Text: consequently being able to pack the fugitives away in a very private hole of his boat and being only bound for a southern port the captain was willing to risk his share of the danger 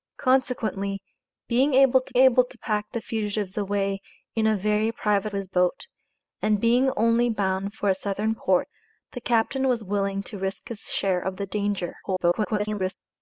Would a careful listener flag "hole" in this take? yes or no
yes